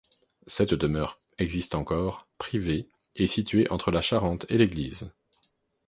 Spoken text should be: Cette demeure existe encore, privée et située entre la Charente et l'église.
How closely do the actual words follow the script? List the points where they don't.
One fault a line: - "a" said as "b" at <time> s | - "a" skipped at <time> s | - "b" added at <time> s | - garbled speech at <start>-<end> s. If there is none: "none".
none